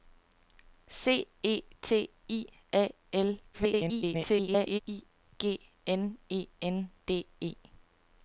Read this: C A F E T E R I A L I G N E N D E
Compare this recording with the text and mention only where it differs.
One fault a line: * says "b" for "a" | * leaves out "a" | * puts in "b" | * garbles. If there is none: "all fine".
* leaves out "A F"
* leaves out "E R"
* garbles